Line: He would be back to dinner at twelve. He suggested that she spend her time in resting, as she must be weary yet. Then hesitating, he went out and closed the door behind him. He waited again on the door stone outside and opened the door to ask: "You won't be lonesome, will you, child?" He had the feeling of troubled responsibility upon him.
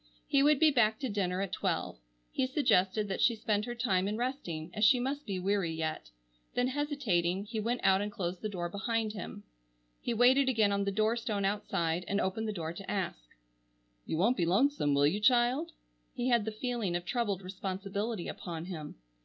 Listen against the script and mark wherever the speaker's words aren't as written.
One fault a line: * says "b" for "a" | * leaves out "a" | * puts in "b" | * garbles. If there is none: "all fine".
all fine